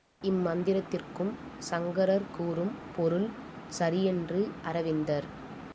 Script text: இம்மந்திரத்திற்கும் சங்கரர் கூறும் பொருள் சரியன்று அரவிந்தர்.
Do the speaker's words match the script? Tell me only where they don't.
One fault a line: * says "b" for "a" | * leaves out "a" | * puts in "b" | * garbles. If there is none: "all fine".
all fine